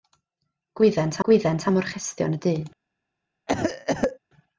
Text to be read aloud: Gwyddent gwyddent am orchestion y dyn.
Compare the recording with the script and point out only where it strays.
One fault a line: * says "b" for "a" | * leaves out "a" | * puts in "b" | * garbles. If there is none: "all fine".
all fine